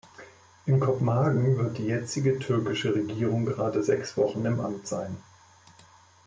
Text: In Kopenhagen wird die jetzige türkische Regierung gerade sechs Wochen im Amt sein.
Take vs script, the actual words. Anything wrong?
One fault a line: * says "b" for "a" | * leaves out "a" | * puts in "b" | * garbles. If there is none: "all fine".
all fine